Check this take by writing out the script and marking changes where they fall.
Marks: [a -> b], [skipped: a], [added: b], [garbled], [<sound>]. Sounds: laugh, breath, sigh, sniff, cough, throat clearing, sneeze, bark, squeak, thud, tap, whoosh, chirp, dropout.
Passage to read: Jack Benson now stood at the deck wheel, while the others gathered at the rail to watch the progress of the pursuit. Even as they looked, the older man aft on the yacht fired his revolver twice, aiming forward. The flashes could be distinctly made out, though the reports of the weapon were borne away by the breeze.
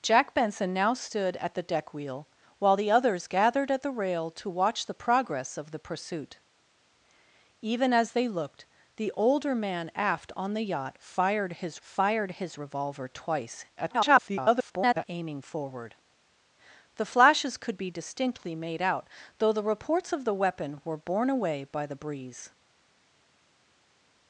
Jack Benson now stood at the deck wheel, while the others gathered at the rail to watch the progress of the pursuit. Even as they looked, the older man aft on the yacht fired his [added: fired his] revolver twice, [garbled] aiming forward. The flashes could be distinctly made out, though the reports of the weapon were borne away by the breeze.